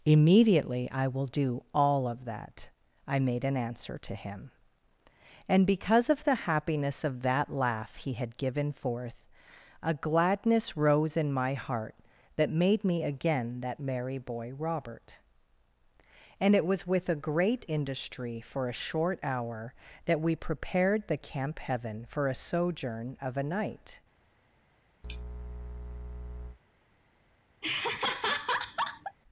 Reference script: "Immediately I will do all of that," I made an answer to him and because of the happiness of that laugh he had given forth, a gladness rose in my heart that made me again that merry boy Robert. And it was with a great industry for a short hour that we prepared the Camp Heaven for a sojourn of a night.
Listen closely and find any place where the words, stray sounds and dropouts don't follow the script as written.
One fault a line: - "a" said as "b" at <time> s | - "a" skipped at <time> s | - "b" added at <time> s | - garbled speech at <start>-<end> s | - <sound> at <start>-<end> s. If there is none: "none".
- sneeze at 25.0-26.6 s
- laugh at 27.6-29.2 s